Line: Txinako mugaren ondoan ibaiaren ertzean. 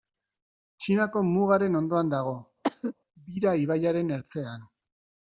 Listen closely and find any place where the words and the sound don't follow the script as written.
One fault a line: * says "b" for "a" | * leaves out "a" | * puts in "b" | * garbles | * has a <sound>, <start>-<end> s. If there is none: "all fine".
* puts in "dago Bira"
* has a cough, 2.6-2.9 s